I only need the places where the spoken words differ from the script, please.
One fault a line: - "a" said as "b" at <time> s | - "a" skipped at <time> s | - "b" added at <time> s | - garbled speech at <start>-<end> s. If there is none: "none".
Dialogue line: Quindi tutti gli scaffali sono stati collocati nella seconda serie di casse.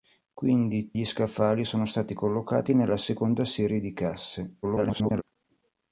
- "tutti" skipped at 0.9 s
- garbled speech at 4.6-5.2 s